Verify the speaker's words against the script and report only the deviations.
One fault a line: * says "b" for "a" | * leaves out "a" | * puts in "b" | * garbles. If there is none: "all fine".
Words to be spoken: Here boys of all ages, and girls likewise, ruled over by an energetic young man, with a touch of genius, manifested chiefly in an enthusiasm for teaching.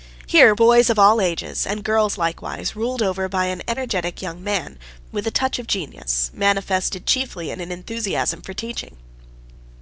all fine